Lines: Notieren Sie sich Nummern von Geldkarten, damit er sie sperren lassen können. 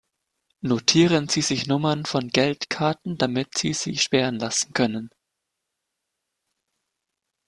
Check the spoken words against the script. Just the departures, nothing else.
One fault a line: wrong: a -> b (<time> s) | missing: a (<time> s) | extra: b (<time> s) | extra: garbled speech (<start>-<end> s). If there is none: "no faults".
wrong: er -> sie (3.6 s)